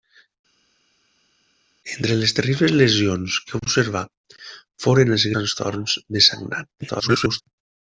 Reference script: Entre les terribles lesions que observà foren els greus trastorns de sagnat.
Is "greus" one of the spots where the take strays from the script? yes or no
yes